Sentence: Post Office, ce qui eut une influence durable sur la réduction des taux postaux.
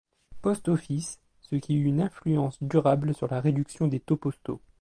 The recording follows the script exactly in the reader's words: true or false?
true